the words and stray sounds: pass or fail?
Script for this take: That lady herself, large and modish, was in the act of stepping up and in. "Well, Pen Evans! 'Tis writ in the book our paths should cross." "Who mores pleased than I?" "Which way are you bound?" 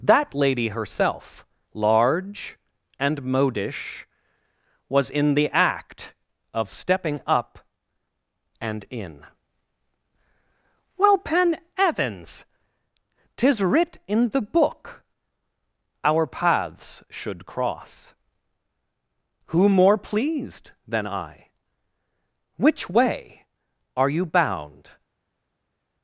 fail